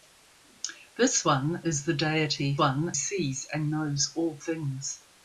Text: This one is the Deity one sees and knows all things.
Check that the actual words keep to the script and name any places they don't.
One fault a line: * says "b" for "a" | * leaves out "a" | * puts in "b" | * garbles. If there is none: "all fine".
all fine